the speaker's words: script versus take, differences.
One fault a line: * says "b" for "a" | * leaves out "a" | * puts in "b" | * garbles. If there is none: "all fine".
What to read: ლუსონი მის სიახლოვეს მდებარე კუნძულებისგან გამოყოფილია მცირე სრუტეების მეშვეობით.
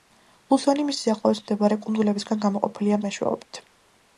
* leaves out "მცირე სრუტეების"